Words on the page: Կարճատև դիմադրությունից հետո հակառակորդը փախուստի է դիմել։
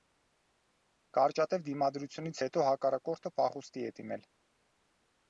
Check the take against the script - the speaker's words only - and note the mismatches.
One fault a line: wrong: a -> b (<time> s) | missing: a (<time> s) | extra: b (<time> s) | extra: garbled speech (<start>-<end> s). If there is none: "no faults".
no faults